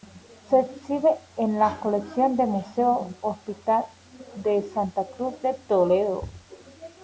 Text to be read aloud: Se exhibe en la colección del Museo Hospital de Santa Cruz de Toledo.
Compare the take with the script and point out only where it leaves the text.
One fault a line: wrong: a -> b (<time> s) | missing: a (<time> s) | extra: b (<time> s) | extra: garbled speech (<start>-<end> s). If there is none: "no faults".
no faults